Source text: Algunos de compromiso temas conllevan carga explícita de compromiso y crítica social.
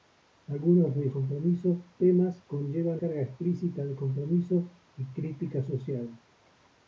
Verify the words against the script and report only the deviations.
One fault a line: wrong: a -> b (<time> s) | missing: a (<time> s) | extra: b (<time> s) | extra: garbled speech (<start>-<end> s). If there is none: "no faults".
no faults